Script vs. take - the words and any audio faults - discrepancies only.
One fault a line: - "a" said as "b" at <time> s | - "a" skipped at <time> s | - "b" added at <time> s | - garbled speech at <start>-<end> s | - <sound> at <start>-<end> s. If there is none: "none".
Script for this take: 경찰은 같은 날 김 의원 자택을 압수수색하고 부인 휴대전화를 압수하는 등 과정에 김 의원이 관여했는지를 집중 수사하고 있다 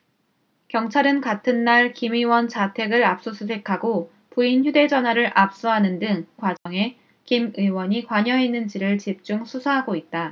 - dropout at 6.6-6.7 s